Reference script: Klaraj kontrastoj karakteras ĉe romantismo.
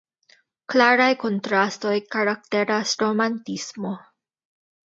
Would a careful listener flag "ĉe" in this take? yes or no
yes